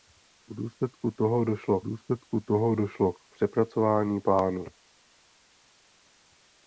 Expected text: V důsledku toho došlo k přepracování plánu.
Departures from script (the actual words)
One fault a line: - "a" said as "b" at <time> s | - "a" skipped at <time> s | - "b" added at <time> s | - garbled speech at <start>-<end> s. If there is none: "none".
- "důsledku toho došlo" added at 1.8 s